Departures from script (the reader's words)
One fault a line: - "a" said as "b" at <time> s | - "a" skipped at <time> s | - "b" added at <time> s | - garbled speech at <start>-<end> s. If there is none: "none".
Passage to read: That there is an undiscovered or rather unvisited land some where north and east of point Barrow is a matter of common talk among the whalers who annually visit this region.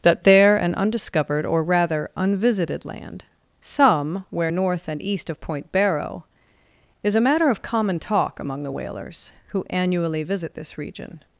- "is" skipped at 0.6 s